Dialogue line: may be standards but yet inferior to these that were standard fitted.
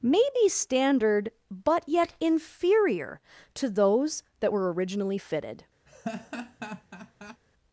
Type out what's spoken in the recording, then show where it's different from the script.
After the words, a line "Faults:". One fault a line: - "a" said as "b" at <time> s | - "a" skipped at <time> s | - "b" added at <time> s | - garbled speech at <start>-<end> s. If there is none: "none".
may be standard but yet inferior to those that were originally fitted.
Faults:
- "standards" said as "standard" at 0.5 s
- "these" said as "those" at 3.7 s
- "standard" said as "originally" at 4.7 s